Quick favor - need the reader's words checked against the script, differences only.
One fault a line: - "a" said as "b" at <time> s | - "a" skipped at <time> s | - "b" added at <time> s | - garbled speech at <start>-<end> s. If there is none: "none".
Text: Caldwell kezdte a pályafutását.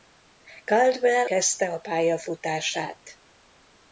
none